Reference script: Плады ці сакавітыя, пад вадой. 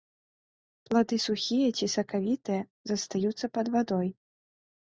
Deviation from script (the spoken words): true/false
true